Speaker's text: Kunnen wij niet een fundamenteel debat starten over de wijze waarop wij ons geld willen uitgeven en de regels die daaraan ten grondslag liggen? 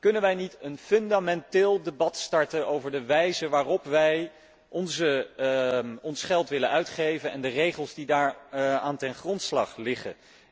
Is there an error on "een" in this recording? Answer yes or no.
no